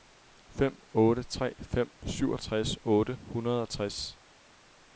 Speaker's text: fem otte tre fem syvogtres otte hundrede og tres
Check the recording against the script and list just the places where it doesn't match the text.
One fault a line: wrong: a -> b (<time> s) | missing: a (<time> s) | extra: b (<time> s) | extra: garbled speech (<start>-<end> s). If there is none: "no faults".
no faults